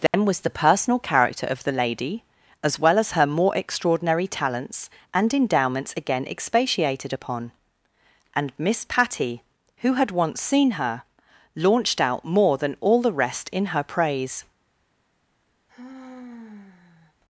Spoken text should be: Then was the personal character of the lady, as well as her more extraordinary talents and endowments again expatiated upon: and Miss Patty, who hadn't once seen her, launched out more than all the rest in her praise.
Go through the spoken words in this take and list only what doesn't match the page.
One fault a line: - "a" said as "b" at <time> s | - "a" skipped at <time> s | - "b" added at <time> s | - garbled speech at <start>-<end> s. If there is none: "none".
- "hadn't" said as "had" at 9.9 s